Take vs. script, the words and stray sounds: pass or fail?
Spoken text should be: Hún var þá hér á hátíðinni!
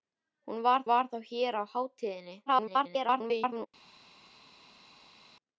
fail